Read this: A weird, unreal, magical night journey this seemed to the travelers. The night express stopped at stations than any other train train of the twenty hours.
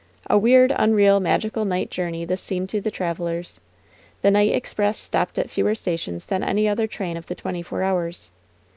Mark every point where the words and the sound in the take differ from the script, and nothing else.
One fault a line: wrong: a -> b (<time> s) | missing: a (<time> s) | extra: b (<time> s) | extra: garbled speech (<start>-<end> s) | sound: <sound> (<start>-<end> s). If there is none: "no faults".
extra: fewer (5.5 s)
missing: train (7.2 s)
extra: four (7.6 s)